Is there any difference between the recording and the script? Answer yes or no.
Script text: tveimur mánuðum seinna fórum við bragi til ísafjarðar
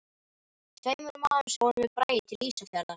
yes